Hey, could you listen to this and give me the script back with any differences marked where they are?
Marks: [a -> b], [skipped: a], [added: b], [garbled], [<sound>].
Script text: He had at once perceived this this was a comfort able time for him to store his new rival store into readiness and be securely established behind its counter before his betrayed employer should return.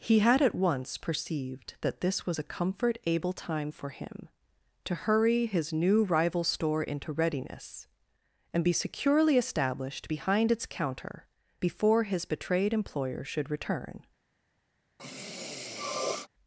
He had at once perceived [this -> that] this was a comfort able time for him to [store -> hurry] his new rival store into readiness and be securely established behind its counter before his betrayed employer should return. [sniff]